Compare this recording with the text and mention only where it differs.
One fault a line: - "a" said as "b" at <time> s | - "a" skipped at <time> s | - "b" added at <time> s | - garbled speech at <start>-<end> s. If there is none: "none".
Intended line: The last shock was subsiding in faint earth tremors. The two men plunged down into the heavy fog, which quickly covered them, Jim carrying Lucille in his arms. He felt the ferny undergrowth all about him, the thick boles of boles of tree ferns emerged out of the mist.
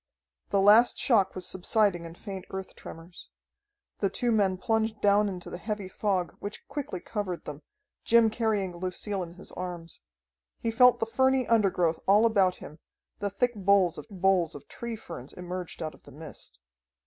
none